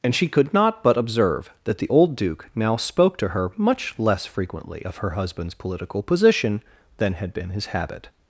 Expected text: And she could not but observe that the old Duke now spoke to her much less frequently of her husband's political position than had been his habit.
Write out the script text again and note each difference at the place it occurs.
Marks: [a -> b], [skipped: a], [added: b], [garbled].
And she could not but observe that the old Duke now spoke to her much less frequently of her husband's political position than had been his habit.